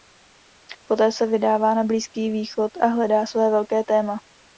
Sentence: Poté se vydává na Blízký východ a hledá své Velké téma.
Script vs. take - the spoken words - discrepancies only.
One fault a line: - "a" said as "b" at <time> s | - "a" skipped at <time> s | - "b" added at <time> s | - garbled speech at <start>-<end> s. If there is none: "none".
none